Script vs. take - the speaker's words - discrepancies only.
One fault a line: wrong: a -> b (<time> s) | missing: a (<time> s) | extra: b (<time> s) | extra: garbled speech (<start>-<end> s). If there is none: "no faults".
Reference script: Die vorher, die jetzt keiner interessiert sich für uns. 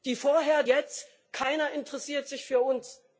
missing: die (0.6 s)